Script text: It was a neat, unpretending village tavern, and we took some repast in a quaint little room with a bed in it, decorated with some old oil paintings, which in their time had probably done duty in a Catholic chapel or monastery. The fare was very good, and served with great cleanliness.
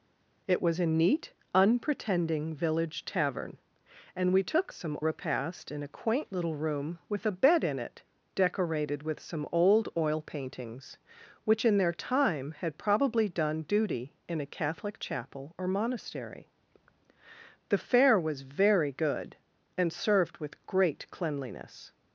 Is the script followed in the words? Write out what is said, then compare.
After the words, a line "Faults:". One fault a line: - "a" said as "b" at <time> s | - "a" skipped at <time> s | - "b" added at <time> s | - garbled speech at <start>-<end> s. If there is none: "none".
It was a neat, unpretending village tavern, and we took some repast in a quaint little room with a bed in it, decorated with some old oil paintings, which in their time had probably done duty in a Catholic chapel or monastery. The fare was very good, and served with great cleanliness.
Faults:
none